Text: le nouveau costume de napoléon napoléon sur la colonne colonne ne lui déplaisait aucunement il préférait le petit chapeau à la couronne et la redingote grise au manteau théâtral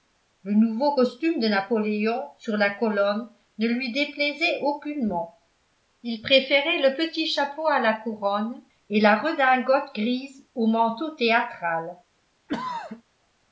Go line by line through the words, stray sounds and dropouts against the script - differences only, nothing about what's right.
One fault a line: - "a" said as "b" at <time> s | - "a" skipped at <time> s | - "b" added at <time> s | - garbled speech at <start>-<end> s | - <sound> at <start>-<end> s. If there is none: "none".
- "napoléon" skipped at 2.2 s
- "colonne" skipped at 3.3 s
- throat clearing at 12.5-13.0 s